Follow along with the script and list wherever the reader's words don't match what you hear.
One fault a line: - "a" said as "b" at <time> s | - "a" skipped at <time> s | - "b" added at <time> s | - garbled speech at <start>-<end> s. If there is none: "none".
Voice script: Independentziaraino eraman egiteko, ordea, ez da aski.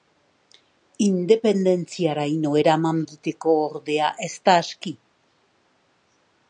none